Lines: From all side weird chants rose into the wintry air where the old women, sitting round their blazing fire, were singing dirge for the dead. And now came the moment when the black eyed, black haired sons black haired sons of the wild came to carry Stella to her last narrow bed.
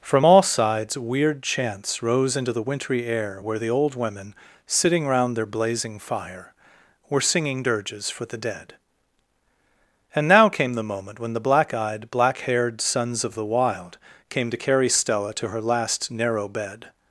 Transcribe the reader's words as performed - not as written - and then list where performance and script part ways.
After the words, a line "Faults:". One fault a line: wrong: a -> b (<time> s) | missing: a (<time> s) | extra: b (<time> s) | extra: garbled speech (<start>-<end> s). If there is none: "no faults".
From all sides weird chants rose into the wintry air where the old women, sitting round their blazing fire, were singing dirges for the dead. And now came the moment when the black eyed, black haired sons of the wild came to carry Stella to her last narrow bed.
Faults:
wrong: side -> sides (0.4 s)
wrong: dirge -> dirges (7.6 s)
missing: black haired sons (13.2 s)